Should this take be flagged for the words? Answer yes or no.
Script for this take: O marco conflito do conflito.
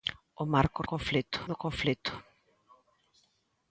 no